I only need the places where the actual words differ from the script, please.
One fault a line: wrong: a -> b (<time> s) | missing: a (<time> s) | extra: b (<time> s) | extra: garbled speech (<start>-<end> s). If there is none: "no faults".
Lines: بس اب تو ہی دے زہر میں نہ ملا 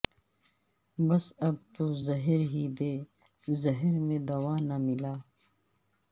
extra: زہر (2.1 s)
extra: دوا (4.3 s)